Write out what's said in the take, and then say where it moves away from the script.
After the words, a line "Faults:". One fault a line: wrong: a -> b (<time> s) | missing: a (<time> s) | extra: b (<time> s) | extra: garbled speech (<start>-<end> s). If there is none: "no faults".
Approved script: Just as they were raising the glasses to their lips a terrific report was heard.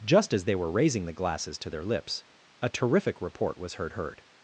Just as they were raising the glasses to their lips a terrific report was heard heard.
Faults:
extra: heard (3.9 s)